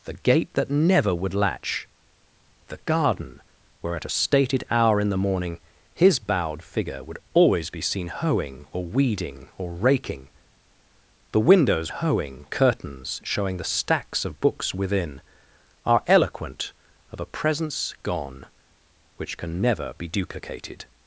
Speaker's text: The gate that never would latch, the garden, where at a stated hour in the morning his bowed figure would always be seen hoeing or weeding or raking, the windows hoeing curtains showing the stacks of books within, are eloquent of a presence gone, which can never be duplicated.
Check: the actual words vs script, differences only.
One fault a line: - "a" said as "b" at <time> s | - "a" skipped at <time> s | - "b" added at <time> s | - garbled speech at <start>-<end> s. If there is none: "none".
none